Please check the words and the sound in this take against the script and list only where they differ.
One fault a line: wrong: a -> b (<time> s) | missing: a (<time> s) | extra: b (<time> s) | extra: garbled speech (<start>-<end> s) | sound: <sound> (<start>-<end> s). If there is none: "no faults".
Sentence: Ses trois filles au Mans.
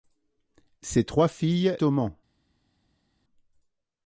no faults